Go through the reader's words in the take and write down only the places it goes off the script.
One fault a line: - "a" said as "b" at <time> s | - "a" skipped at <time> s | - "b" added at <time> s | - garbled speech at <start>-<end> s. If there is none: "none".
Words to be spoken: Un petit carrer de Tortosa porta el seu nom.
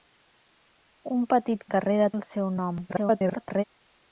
- "Tortosa porta" skipped at 2.1 s
- garbled speech at 2.9-3.6 s